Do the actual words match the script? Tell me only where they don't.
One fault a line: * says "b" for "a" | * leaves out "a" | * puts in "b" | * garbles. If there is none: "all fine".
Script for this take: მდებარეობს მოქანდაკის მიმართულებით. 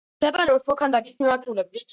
all fine